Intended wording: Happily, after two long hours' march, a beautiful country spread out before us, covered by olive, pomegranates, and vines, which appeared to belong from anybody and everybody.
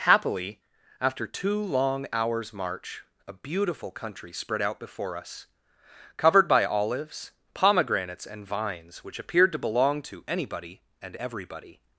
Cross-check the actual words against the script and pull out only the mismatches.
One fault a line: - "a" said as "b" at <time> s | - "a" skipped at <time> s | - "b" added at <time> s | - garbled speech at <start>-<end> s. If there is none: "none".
- "olive" said as "olives" at 6.7 s
- "from" said as "to" at 10.0 s